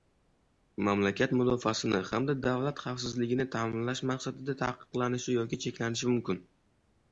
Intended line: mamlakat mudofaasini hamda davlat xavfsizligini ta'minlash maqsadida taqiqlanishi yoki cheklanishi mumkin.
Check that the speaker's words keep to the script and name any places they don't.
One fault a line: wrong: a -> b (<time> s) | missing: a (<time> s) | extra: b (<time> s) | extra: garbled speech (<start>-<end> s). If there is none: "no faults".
no faults